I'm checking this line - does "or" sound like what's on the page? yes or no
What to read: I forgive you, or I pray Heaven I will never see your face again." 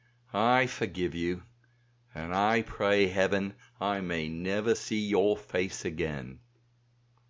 no